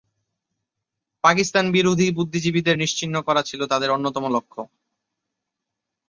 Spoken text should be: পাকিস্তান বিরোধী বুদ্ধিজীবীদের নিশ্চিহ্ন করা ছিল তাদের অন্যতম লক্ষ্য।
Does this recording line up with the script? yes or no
yes